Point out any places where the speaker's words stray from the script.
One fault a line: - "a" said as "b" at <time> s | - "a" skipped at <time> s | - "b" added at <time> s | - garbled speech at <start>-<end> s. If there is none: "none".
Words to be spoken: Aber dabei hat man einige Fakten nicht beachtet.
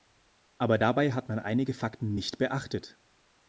none